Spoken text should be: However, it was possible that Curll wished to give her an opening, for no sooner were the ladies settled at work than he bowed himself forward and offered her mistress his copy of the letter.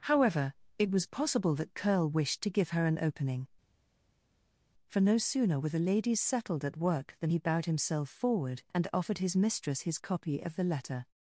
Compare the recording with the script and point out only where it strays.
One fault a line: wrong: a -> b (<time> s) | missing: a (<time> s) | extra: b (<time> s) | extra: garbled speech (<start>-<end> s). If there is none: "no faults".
wrong: her -> his (9.2 s)